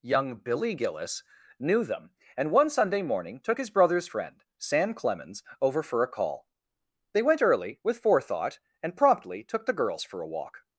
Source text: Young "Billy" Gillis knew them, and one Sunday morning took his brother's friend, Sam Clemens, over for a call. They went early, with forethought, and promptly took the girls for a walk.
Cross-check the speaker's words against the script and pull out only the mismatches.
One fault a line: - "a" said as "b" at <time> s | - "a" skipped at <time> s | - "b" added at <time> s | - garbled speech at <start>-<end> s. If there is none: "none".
none